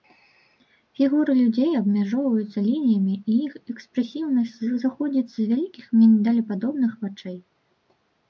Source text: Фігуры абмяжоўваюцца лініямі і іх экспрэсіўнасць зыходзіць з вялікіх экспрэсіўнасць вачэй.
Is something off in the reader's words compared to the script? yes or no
yes